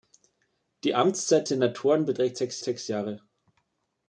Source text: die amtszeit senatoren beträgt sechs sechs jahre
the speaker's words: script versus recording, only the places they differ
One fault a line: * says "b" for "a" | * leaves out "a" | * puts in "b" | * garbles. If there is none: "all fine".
all fine